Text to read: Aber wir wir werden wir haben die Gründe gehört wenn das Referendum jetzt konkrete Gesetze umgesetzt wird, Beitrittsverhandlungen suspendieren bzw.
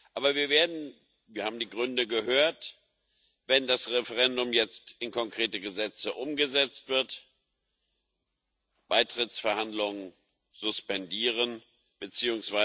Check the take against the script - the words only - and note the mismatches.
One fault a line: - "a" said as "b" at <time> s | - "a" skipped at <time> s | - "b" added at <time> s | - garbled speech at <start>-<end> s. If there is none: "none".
- "wir" skipped at 0.5 s
- "in" added at 5.0 s